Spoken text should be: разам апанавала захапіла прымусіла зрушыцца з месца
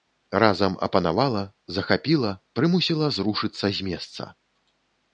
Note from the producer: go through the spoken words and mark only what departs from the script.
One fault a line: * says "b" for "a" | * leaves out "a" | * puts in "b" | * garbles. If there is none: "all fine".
all fine